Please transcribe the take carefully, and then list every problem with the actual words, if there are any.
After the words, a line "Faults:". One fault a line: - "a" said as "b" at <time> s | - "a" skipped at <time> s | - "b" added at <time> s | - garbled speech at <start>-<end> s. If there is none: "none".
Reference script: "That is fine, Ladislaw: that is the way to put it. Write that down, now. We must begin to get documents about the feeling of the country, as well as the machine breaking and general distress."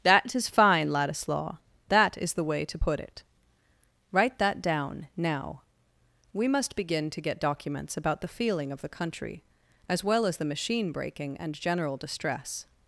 "That is fine, Ladislaw: that is the way to put it. Write that down, now. We must begin to get documents about the feeling of the country, as well as the machine breaking and general distress."
Faults:
none